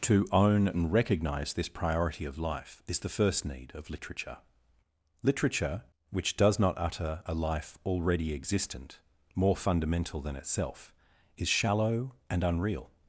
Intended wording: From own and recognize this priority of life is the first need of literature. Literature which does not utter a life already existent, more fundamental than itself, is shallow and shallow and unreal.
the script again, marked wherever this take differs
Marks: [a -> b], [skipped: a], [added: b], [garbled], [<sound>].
[From -> To] own and recognize this priority of life is the first need of literature. Literature which does not utter a life already existent, more fundamental than itself, is shallow and [skipped: shallow and] unreal.